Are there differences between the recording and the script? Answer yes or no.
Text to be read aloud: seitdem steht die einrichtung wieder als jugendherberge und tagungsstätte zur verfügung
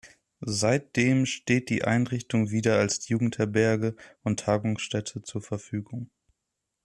no